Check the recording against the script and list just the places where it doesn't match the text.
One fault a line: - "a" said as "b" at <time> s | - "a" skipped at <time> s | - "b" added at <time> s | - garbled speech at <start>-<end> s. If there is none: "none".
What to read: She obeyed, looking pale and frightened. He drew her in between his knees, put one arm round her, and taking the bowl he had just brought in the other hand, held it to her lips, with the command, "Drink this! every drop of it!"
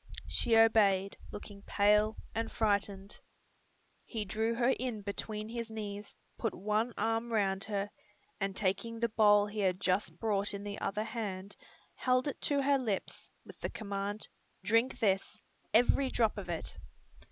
none